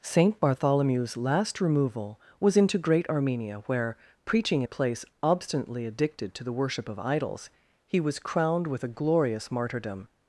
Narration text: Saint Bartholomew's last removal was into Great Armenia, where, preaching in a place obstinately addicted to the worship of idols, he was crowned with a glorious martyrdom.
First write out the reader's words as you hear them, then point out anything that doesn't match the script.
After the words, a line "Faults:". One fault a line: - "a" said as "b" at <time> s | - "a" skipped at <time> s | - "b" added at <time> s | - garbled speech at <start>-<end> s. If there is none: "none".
Saint Bartholomew's last removal was into Great Armenia, where, preaching a place obstinately addicted to the worship of idols, he was crowned with a glorious martyrdom.
Faults:
- "in" skipped at 4.6 s